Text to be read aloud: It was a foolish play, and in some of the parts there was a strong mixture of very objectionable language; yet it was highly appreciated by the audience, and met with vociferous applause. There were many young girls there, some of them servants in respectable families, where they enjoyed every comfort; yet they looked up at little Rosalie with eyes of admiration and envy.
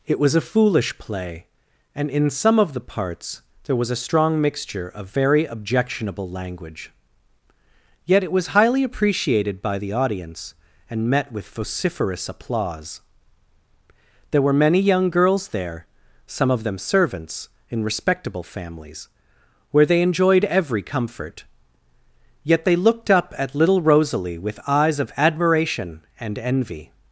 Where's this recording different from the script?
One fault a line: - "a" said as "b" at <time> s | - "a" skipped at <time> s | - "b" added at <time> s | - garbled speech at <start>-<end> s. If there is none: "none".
none